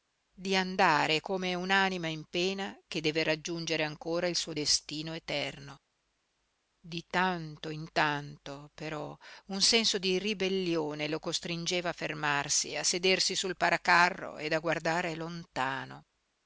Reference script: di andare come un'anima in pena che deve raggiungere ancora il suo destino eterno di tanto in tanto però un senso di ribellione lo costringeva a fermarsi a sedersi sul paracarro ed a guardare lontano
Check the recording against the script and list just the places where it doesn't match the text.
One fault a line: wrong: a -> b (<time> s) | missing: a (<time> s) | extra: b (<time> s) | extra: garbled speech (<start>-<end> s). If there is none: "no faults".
no faults